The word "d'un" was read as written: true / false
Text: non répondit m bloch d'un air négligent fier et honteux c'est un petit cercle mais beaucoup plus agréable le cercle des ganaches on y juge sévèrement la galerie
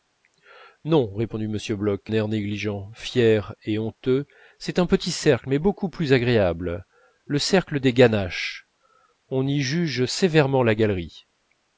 false